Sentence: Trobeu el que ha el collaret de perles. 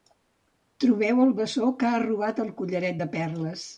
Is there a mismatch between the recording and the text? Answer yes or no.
yes